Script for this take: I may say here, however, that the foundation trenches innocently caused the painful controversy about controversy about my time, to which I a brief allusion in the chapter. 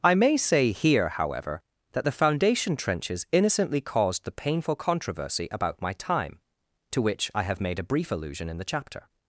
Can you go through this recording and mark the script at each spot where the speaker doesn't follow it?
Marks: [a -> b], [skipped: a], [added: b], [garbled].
I may say here, however, that the foundation trenches innocently caused the painful controversy about [skipped: controversy about] my time, to which I [added: have made] a brief allusion in the chapter.